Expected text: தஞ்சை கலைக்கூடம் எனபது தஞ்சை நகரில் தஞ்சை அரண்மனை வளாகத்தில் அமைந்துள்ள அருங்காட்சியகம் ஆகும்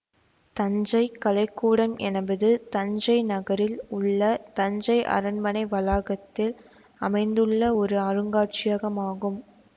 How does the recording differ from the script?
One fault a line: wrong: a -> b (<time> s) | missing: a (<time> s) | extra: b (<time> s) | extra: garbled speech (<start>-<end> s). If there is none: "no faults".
extra: உள்ள (3.9 s)
extra: ஒரு (7.8 s)